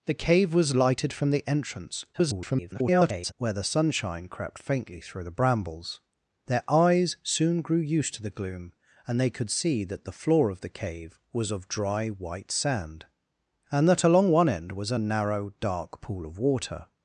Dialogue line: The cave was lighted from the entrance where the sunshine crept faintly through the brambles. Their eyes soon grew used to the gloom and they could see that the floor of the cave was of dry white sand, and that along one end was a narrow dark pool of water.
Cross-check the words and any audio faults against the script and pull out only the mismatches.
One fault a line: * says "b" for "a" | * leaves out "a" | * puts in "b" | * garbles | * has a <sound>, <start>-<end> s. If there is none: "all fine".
* garbles